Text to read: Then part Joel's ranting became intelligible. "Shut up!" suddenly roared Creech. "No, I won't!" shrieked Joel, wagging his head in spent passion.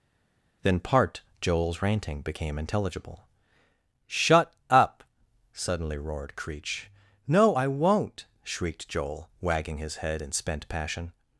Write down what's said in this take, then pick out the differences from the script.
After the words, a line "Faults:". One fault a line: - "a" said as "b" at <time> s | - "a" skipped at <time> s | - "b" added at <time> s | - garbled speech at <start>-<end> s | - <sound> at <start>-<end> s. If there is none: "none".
Then part Joel's ranting became intelligible. "Shut up!" suddenly roared Creech. "No, I won't!" shrieked Joel, wagging his head in spent passion.
Faults:
none